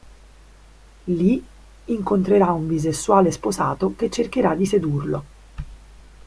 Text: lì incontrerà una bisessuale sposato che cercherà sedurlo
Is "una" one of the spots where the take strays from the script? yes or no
yes